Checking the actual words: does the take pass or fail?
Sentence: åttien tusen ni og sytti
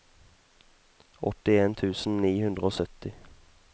fail